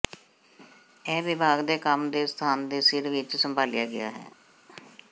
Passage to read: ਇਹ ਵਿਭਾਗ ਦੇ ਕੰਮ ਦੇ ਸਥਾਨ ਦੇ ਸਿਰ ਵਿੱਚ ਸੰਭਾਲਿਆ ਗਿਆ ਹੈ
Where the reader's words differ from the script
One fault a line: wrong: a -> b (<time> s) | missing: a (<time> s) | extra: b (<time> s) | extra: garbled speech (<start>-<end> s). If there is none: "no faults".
no faults